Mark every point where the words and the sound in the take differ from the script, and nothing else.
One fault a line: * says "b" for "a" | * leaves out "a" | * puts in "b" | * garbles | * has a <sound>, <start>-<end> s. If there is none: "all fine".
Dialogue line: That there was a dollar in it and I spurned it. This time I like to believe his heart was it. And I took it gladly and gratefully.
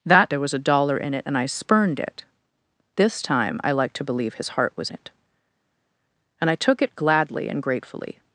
all fine